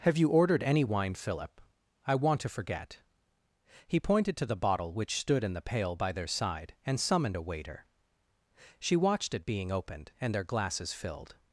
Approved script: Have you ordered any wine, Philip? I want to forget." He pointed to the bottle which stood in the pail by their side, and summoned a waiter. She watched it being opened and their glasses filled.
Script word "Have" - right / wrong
right